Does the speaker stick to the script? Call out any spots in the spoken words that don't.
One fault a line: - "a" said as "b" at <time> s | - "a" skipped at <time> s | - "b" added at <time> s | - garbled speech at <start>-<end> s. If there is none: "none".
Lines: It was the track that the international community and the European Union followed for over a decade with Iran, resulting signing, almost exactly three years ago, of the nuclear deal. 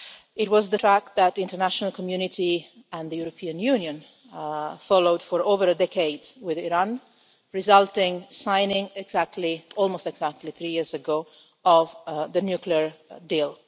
none